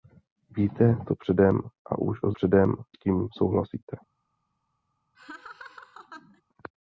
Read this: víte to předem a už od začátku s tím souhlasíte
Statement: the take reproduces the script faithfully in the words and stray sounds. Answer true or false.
false